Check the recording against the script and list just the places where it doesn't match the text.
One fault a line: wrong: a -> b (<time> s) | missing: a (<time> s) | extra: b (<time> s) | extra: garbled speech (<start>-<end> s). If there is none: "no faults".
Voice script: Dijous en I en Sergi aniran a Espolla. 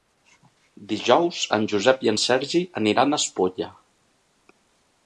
extra: Josep (1.8 s)